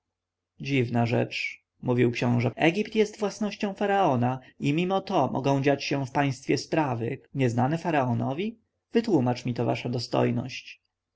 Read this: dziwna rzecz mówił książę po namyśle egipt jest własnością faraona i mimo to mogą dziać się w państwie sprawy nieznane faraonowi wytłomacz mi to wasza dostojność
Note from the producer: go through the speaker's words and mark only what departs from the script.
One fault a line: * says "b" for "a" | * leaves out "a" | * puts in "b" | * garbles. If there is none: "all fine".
* leaves out "po namyśle"